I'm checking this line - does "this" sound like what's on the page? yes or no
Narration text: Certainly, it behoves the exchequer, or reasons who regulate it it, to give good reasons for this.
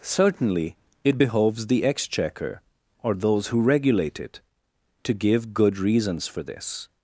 yes